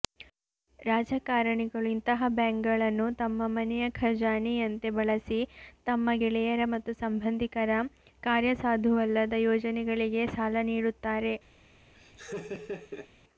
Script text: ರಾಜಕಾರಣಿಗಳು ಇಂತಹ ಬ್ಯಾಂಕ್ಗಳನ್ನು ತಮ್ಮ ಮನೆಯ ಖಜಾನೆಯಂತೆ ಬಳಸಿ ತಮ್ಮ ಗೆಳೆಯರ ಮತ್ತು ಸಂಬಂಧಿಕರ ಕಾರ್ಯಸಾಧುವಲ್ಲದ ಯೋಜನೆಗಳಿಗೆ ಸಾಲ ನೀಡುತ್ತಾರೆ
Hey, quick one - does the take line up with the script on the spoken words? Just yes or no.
yes